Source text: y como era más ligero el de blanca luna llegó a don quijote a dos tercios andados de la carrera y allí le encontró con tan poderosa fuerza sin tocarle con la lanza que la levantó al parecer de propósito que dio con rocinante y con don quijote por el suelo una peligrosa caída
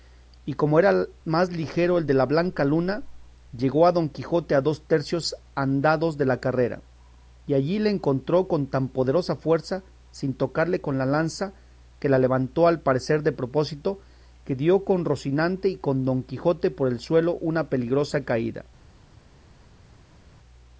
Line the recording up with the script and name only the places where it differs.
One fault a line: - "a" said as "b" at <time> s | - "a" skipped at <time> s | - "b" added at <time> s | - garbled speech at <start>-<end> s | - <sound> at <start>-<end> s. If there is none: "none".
- "la" added at 2.1 s